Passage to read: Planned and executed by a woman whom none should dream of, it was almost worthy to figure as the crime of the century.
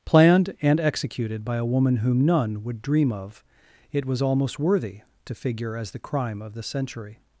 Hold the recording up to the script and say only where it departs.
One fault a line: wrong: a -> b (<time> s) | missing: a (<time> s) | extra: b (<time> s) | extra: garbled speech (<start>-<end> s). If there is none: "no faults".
wrong: should -> would (2.6 s)